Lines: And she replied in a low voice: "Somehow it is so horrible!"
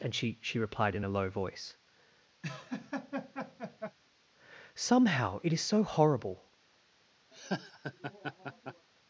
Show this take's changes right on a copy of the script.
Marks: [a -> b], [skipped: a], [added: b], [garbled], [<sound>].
And she [added: she] replied in a low voice: [laugh] "Somehow it is so horrible!" [laugh]